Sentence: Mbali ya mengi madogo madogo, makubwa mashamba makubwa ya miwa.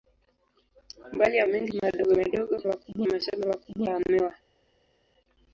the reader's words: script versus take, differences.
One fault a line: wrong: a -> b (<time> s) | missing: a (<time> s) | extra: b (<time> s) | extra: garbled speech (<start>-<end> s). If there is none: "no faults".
no faults